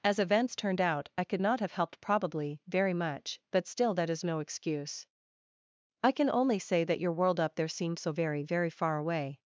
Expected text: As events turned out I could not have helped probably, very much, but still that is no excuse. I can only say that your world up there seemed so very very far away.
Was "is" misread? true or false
false